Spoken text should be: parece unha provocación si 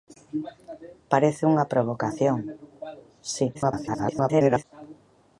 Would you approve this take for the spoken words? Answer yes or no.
no